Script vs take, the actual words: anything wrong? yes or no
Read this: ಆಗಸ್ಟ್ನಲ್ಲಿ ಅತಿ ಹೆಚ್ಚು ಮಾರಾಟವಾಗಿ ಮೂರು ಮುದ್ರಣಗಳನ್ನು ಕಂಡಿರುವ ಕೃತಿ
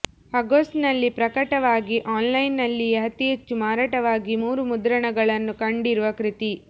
yes